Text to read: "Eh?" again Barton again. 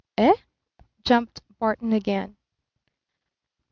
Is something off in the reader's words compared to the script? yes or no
yes